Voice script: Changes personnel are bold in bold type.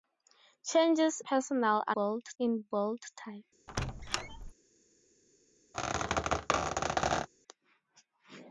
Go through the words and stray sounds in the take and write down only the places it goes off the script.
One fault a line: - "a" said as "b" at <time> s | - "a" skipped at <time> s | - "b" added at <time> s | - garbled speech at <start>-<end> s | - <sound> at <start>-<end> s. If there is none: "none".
- squeak at 3.7-4.5 s
- squeak at 5.7-7.3 s